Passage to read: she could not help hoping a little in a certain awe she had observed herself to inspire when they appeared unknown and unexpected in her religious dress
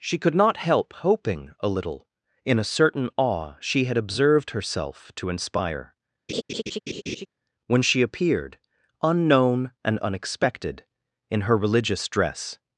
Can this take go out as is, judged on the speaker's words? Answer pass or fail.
fail